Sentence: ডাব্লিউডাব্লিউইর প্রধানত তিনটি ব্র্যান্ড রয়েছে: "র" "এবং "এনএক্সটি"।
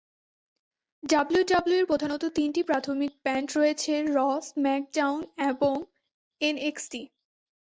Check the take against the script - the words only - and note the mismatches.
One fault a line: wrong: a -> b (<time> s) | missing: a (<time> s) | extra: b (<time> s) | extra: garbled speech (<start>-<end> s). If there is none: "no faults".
extra: প্রাথমিক (2.6 s)
extra: স্ম্যাকডাউন (4.5 s)